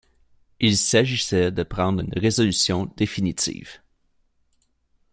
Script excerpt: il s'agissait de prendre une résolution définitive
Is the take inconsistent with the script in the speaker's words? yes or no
no